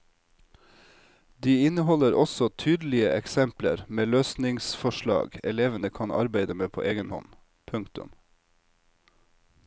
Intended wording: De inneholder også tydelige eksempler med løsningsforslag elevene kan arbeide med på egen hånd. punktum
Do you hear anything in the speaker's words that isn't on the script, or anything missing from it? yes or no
no